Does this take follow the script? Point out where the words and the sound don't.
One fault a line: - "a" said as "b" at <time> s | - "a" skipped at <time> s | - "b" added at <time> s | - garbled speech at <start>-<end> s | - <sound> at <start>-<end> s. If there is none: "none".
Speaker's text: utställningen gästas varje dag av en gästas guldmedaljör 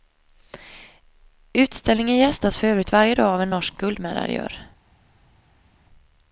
- "för övrigt" added at 2.6 s
- "gästas" said as "norsk" at 3.5 s